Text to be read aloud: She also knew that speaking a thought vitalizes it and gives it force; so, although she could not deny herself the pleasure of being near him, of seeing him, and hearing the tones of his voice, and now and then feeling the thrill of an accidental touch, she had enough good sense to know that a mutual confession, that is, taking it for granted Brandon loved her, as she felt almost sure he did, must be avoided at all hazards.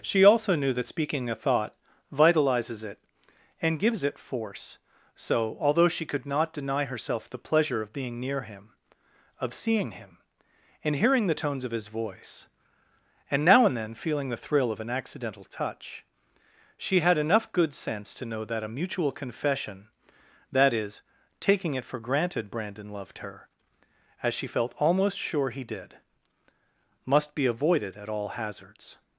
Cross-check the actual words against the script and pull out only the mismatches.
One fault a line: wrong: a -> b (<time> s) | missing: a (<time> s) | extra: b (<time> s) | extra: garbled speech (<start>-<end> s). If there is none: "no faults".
no faults